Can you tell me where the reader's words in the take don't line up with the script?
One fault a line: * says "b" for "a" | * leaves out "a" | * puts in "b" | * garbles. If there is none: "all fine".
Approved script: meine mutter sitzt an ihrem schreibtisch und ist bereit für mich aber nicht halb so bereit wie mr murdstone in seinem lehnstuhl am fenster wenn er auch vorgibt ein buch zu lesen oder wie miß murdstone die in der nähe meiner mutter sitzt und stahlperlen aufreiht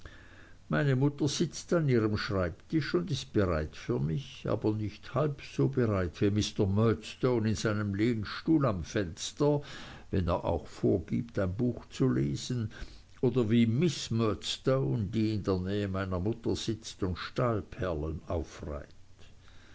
all fine